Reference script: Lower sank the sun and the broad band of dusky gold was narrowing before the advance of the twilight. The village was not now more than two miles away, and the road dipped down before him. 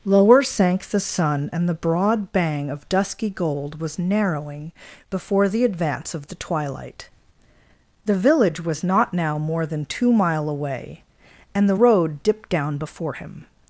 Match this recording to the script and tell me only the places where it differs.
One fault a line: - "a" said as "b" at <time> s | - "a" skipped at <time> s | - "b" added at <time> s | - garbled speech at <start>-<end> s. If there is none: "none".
- "band" said as "bang" at 2.3 s
- "miles" said as "mile" at 10.1 s